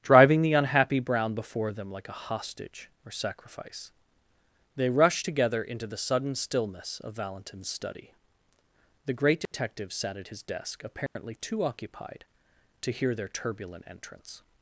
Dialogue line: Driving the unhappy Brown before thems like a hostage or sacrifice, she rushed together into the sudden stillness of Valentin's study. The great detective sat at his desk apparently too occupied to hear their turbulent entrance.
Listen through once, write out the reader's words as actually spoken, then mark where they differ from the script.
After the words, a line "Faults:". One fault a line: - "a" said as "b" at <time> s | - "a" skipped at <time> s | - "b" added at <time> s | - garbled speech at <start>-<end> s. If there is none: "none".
Driving the unhappy Brown before them like a hostage or sacrifice, they rushed together into the sudden stillness of Valentin's study. The great detective sat at his desk apparently too occupied to hear their turbulent entrance.
Faults:
- "thems" said as "them" at 1.7 s
- "she" said as "they" at 4.8 s